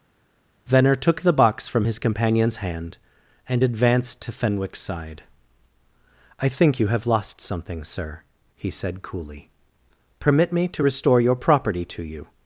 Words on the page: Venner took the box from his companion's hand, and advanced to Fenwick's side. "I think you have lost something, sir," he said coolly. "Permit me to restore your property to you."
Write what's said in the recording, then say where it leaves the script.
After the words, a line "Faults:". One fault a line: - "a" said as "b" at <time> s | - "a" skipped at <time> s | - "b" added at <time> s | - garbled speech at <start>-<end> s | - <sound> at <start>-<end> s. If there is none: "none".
Venner took the box from his companion's hand, and advanced to Fenwick's side. "I think you have lost something, sir," he said coolly. "Permit me to restore your property to you."
Faults:
none